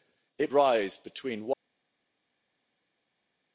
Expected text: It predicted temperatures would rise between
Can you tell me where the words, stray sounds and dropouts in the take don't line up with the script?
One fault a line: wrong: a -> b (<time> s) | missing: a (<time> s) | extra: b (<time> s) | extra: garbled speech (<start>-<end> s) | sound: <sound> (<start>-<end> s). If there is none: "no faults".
missing: predicted temperatures would (0.5 s)